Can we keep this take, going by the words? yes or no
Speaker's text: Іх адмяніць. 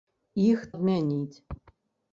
yes